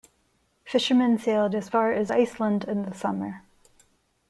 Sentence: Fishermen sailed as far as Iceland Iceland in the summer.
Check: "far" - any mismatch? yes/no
no